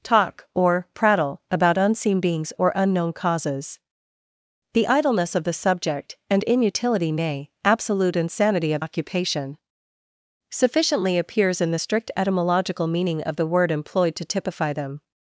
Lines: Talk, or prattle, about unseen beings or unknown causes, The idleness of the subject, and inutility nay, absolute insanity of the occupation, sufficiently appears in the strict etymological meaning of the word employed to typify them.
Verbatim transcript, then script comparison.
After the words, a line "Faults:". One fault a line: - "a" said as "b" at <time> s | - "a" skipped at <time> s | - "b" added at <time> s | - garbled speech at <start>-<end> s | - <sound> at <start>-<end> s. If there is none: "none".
Talk, or prattle, about unseen beings or unknown causes, The idleness of the subject, and inutility nay, absolute insanity of occupation, sufficiently appears in the strict etymological meaning of the word employed to typify them.
Faults:
- "the" skipped at 8.8 s